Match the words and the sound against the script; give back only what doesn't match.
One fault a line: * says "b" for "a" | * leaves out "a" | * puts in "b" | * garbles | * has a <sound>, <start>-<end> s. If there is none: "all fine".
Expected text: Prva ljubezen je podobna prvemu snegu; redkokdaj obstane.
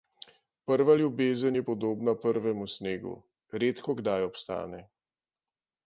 all fine